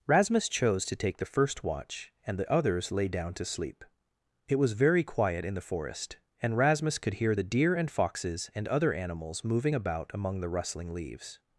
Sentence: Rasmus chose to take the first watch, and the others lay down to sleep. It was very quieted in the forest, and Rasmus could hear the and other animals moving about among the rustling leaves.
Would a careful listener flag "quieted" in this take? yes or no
yes